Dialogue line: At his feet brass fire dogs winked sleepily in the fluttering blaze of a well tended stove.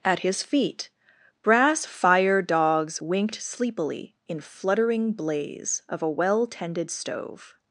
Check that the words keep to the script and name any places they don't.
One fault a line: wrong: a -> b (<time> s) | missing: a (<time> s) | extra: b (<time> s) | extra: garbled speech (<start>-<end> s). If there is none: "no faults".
missing: the (4.4 s)